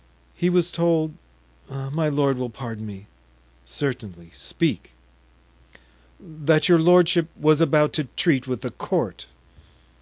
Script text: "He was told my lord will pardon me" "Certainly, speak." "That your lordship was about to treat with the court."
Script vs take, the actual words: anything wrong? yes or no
no